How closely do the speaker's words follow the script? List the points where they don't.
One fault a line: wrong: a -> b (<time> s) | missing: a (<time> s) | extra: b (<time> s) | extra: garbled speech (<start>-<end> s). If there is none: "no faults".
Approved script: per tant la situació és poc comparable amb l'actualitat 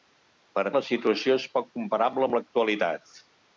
missing: tant (0.6 s)